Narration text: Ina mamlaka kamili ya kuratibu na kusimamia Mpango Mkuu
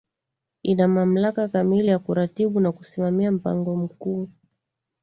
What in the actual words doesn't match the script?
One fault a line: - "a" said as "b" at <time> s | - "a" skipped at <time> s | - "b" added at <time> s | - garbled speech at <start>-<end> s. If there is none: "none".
none